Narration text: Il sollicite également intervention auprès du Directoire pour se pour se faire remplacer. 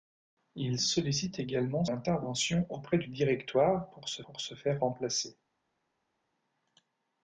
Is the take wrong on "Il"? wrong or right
right